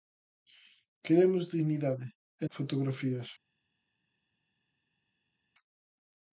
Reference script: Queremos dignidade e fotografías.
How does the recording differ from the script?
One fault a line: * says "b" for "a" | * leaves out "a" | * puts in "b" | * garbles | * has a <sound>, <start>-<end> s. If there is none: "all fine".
all fine